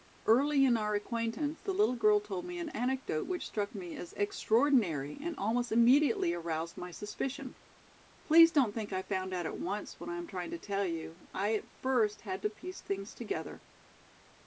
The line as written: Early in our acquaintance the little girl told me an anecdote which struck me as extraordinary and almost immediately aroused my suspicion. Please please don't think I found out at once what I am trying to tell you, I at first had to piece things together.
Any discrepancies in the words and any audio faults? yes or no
yes